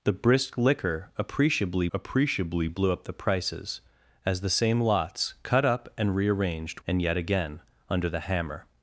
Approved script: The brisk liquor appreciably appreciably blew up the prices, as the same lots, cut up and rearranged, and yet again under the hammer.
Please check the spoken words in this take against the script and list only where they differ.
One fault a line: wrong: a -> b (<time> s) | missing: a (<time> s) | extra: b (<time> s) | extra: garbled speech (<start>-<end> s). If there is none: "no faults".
no faults